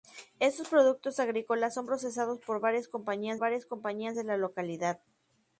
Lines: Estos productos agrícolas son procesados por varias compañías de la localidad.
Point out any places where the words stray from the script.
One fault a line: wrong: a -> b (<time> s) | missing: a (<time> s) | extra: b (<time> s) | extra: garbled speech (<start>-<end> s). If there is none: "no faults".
extra: varias compañías (3.4 s)